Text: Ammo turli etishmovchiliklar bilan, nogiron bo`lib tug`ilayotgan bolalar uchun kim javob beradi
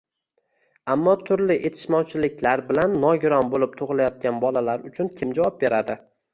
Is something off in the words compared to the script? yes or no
no